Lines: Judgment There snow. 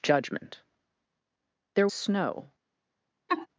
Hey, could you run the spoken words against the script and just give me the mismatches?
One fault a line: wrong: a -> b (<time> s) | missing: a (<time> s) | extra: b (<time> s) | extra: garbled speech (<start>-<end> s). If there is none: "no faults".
no faults